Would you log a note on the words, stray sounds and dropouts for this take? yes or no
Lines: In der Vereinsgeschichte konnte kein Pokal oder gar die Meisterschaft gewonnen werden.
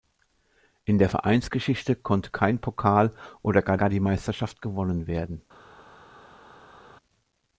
yes